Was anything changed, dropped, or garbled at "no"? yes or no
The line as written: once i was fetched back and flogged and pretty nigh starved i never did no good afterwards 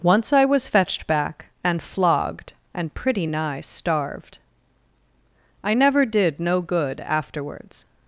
no